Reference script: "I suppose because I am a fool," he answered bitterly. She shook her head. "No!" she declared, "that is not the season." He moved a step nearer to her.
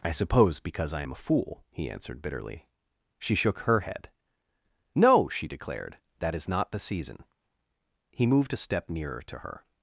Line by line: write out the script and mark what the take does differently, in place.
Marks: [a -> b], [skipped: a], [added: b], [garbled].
"I suppose because I am a fool," he answered bitterly. She shook her head. "No!" she declared, "that is not the season." He moved a step nearer to her.